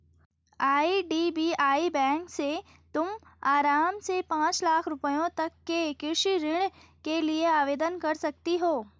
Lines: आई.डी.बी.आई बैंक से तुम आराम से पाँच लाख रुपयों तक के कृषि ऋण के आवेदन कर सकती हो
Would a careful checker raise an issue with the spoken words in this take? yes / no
yes